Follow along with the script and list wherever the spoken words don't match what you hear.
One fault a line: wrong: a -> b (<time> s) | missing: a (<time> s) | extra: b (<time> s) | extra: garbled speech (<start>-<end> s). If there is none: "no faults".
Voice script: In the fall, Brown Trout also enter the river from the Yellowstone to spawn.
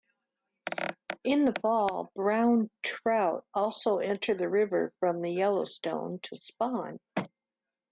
no faults